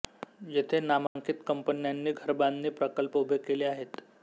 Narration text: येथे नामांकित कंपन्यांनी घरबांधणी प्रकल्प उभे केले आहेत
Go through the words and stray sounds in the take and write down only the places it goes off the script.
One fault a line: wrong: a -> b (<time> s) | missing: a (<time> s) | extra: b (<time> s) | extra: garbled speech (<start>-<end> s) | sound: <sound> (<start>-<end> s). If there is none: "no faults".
sound: dropout (1.1-1.2 s)